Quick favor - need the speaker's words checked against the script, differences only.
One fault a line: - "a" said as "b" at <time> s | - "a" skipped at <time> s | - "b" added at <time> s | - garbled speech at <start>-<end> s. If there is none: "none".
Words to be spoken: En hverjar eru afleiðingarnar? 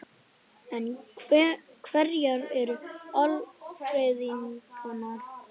none